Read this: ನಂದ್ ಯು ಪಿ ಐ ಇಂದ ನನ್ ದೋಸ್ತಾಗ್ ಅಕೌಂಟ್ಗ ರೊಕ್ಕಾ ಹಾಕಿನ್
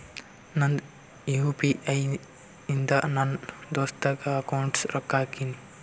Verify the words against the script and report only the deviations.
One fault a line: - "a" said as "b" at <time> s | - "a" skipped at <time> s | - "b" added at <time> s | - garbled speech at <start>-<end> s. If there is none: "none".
none